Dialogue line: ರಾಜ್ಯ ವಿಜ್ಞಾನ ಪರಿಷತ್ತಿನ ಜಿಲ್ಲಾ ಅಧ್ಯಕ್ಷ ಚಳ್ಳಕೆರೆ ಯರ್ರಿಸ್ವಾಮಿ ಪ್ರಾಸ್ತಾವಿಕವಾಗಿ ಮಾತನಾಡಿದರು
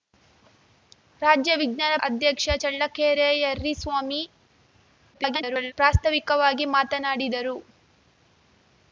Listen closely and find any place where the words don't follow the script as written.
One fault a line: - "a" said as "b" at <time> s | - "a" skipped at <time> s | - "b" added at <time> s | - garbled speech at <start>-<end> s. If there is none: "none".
- "ಪರಿಷತ್ತಿನ ಜಿಲ್ಲಾ" skipped at 1.9 s
- garbled speech at 5.1-5.7 s